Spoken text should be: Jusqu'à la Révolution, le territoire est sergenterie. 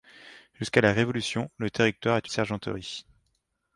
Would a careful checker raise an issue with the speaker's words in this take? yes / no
no